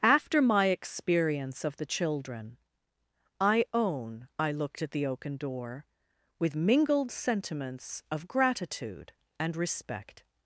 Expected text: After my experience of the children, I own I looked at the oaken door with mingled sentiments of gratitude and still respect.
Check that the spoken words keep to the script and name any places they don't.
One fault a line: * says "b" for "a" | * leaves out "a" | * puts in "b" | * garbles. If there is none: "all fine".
* leaves out "still"